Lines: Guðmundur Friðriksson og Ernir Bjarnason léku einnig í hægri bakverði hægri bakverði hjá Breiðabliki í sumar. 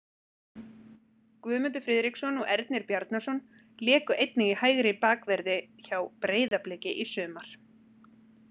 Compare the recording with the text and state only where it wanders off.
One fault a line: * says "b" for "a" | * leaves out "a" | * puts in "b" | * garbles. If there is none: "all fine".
* leaves out "hægri bakverði"